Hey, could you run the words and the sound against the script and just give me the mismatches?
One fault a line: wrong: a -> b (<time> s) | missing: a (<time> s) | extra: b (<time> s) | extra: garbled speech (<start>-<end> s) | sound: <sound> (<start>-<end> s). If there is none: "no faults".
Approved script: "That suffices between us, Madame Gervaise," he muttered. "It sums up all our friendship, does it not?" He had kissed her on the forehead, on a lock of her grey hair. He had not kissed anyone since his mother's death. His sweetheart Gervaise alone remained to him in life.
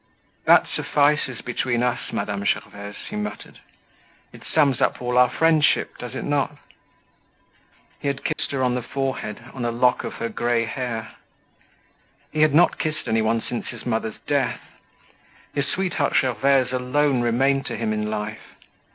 sound: dropout (8.3-8.4 s)